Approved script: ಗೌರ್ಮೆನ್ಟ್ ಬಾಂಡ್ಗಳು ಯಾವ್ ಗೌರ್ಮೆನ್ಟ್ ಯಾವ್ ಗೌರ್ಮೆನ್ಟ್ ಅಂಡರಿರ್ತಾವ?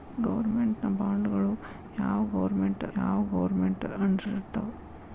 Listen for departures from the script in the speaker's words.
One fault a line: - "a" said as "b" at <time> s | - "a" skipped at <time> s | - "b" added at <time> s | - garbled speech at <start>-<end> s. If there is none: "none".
none